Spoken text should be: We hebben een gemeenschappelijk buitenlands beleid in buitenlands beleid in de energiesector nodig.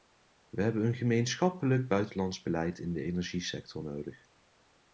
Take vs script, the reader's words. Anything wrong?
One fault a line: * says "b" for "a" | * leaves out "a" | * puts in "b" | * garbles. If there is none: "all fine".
* leaves out "buitenlands beleid in"